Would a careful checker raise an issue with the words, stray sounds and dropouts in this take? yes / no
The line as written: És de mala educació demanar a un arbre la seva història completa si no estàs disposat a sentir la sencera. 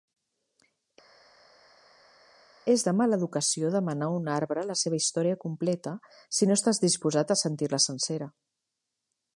no